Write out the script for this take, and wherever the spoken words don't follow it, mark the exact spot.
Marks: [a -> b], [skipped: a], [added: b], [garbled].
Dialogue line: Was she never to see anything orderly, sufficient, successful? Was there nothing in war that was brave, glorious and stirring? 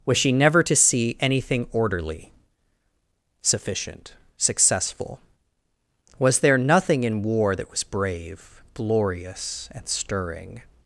Was she never to see anything orderly, sufficient, successful? Was there nothing in war that was brave, glorious and stirring?